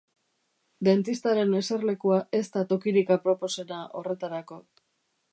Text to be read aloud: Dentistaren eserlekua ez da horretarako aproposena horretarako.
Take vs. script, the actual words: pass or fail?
fail